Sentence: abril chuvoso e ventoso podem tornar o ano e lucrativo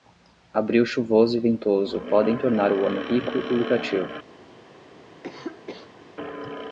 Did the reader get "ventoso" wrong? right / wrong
right